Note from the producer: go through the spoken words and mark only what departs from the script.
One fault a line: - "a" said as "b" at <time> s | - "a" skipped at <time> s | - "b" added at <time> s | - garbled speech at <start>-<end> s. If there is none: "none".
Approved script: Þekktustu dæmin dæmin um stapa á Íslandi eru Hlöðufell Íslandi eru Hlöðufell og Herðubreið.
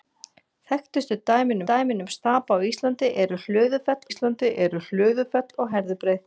none